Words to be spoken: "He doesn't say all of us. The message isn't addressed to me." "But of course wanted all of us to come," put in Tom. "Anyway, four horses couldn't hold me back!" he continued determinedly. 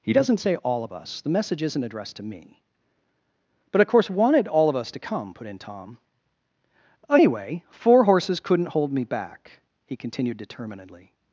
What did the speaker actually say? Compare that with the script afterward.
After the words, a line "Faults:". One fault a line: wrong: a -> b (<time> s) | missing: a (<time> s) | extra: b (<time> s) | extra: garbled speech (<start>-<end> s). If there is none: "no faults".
"He doesn't say all of us. The message isn't addressed to me." "But of course wanted all of us to come," put in Tom. "Anyway, four horses couldn't hold me back!" he continued determinedly.
Faults:
no faults